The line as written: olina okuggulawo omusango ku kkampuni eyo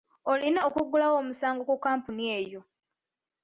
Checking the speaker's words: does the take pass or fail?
pass